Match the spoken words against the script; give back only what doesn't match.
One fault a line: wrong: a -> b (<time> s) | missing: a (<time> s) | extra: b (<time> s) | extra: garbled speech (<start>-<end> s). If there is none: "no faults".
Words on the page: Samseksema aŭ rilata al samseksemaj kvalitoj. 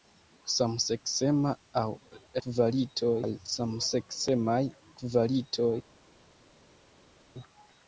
wrong: rilata -> kvalitoj (2.5 s)